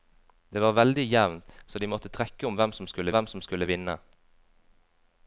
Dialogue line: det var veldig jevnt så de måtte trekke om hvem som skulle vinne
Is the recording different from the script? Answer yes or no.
yes